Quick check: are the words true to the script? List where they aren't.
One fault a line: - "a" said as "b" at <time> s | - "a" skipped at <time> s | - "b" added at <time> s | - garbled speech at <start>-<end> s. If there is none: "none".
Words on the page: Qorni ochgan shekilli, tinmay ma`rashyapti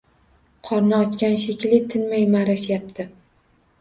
none